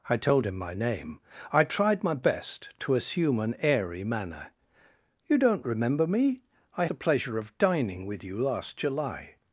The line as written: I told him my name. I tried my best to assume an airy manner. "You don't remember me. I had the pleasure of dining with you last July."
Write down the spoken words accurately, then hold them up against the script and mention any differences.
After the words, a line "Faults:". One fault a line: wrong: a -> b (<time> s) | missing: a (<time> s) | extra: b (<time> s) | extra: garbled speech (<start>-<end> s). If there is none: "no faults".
I told him my name. I tried my best to assume an airy manner. "You don't remember me. I the pleasure of dining with you last July."
Faults:
missing: had (6.8 s)